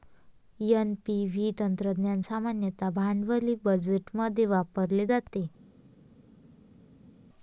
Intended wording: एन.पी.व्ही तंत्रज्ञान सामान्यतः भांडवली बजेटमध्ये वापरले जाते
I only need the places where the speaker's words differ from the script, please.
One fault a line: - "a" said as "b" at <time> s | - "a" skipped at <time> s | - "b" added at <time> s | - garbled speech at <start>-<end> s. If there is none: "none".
none